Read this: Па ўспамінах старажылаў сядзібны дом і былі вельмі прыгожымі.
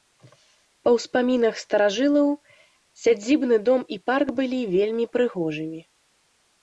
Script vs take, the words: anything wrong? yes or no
yes